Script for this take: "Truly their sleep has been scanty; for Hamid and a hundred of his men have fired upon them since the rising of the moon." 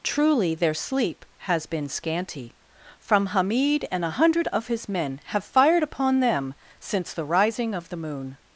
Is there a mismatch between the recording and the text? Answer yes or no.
yes